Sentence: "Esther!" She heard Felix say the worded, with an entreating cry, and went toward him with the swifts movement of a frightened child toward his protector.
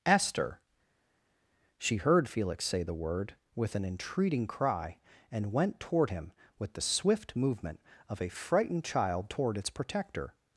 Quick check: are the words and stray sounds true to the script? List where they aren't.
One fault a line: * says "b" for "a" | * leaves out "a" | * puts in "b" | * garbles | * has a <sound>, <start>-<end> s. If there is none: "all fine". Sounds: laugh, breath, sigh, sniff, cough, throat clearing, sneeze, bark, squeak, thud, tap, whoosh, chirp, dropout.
* says "word" for "worded"
* says "swift" for "swifts"
* says "its" for "his"